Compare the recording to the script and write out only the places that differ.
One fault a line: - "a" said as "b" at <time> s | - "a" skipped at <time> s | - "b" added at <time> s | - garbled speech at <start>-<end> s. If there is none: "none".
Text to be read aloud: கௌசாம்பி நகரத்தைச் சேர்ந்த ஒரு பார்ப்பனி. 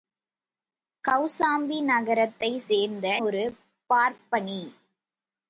none